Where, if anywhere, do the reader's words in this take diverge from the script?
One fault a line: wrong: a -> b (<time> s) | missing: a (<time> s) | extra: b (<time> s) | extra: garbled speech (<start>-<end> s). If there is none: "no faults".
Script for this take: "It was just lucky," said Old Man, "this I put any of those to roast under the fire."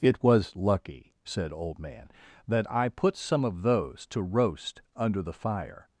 missing: just (0.6 s)
wrong: this -> that (2.5 s)
wrong: any -> some (3.1 s)